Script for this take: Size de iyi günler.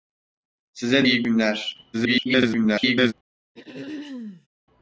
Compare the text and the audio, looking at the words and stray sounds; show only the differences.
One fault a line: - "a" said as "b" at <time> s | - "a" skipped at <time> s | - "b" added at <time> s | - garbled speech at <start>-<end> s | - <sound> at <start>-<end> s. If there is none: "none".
- "de" skipped at 1.1 s
- garbled speech at 1.9-3.1 s
- throat clearing at 3.5-4.5 s